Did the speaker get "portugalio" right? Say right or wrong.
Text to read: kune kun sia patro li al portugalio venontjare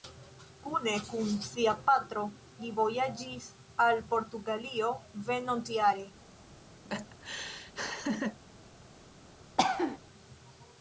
right